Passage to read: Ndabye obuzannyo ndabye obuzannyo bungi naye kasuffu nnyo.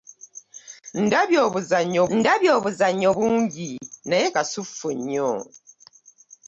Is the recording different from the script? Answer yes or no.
no